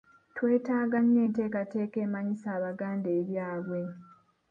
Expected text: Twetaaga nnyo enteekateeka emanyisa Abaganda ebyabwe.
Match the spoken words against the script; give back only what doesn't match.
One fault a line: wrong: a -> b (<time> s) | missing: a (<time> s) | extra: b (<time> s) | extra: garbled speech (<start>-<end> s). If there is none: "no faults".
no faults